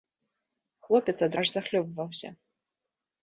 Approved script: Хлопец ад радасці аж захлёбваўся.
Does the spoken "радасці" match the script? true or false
false